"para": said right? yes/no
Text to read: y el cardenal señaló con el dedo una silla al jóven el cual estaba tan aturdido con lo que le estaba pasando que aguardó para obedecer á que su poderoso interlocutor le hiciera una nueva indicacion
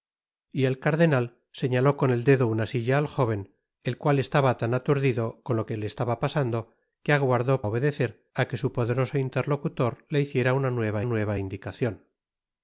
no